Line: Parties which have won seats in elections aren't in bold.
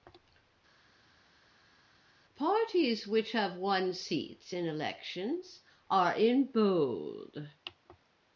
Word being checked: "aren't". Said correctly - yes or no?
no